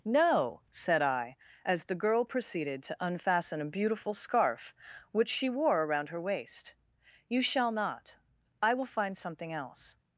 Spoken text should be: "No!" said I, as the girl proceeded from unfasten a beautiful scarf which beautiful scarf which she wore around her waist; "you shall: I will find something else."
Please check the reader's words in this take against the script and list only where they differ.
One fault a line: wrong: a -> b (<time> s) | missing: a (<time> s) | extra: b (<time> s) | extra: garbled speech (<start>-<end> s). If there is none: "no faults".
wrong: from -> to (2.8 s)
missing: beautiful scarf which (5.3 s)
extra: not (7.7 s)